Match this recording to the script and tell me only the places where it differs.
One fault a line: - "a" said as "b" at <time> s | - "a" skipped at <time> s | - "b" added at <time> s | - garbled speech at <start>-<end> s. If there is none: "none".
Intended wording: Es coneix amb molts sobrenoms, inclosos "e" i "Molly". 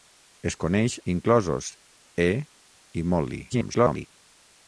- "amb molts sobrenoms" skipped at 0.9 s
- garbled speech at 3.5-4.1 s